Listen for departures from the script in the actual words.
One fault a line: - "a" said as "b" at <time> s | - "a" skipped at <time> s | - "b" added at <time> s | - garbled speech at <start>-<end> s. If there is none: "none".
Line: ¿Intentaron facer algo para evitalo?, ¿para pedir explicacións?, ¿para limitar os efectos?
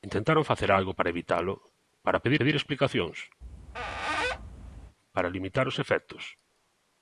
- "pedir" added at 2.4 s